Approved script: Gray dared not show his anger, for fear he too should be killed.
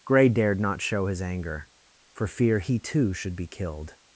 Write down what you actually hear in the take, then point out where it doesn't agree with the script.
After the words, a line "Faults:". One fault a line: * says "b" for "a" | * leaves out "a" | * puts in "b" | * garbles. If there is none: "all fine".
Gray dared not show his anger, for fear he too should be killed.
Faults:
all fine